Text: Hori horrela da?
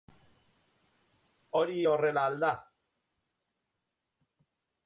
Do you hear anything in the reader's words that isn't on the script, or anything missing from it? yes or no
yes